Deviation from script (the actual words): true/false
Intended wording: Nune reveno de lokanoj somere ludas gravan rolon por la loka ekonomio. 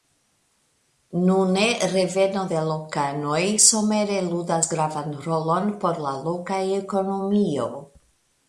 false